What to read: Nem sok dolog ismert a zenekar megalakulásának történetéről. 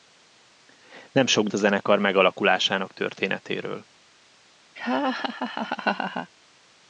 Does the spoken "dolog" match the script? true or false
false